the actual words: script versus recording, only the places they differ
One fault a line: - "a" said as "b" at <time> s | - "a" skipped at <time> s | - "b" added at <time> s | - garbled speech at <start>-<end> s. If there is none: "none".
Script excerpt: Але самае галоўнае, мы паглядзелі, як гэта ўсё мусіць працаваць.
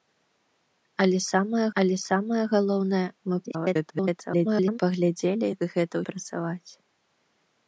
- "але самае" added at 1.8 s
- garbled speech at 3.4-4.8 s
- "ўсё мусіць" skipped at 5.9 s